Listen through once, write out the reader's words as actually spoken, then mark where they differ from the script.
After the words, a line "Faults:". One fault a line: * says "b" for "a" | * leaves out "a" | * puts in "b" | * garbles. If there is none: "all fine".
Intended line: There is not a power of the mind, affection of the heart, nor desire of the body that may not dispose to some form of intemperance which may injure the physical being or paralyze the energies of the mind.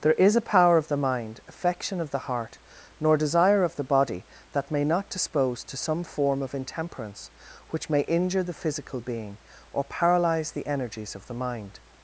There is a power of the mind, affection of the heart, nor desire of the body that may not dispose to some form of intemperance which may injure the physical being or paralyze the energies of the mind.
Faults:
* leaves out "not"